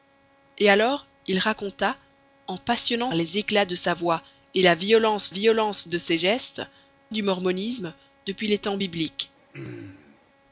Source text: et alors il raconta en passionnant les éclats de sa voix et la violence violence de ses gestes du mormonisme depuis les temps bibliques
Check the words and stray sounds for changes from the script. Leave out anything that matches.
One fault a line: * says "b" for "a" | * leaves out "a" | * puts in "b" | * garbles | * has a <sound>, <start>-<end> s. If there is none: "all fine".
* has a throat clearing, 9.5-10.2 s